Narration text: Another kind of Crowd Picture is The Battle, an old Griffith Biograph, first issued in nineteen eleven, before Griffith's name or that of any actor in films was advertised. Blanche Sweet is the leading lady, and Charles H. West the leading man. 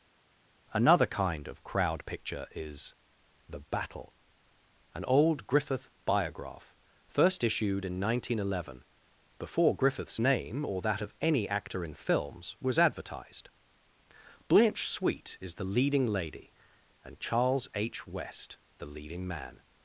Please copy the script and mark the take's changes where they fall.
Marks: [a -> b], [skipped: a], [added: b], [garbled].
Another kind of Crowd Picture is The Battle, an old Griffith Biograph, first issued in nineteen eleven, before Griffith's name or that of any actor in films was advertised. Blanche Sweet is the leading lady, and Charles H. West the leading man.